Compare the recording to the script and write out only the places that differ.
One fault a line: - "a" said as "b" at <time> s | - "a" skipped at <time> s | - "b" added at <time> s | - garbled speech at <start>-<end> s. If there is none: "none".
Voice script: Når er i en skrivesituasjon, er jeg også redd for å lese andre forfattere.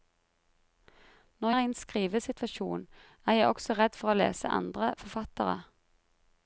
none